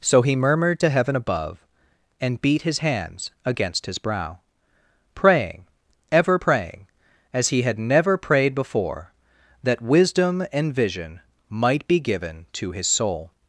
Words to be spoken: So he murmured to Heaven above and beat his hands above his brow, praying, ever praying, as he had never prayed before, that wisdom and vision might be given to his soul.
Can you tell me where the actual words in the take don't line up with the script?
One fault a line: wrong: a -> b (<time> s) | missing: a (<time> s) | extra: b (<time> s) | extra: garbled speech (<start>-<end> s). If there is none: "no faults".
wrong: above -> against (3.4 s)